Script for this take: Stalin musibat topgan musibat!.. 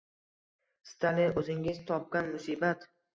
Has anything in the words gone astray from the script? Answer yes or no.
yes